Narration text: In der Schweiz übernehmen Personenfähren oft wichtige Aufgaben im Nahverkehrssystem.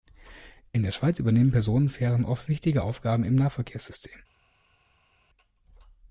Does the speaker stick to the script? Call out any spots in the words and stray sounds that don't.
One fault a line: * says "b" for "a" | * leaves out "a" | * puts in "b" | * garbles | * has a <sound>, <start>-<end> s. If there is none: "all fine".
all fine